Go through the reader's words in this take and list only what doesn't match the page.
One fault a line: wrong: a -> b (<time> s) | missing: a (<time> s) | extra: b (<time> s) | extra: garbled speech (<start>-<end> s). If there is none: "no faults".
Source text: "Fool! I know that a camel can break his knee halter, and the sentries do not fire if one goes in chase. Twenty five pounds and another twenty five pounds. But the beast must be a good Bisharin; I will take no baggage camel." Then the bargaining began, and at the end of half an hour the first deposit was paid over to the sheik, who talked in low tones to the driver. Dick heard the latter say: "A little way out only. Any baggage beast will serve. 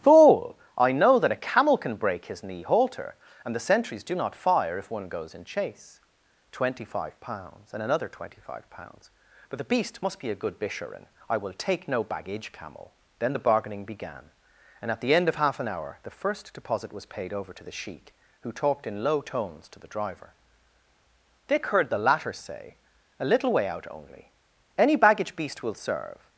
no faults